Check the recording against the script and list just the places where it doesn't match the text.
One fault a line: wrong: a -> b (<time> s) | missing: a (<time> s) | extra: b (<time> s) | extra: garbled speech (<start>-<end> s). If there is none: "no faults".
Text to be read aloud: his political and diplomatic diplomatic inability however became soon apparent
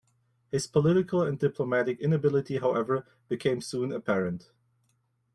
missing: diplomatic (2.0 s)